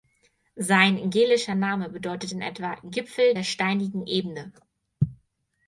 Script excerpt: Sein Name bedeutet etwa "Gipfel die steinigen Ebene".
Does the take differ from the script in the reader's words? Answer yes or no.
yes